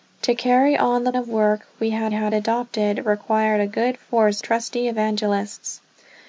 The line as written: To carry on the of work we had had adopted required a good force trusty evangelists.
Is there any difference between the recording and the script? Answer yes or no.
no